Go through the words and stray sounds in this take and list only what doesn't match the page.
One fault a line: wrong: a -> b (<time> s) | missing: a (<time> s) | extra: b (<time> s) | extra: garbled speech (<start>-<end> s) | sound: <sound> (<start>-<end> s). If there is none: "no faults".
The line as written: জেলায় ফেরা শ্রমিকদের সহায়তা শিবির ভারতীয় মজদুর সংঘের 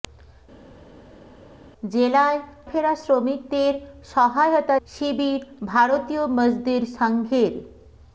no faults